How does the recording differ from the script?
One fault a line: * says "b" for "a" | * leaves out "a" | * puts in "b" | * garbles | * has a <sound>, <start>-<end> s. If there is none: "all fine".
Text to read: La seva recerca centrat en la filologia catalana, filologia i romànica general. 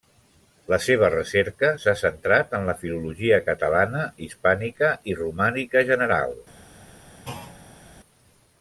* puts in "s'ha"
* says "hispànica" for "filologia"
* has a thud, 7.2-7.9 s